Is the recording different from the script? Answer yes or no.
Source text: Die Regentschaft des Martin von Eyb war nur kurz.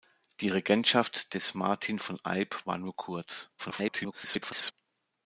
yes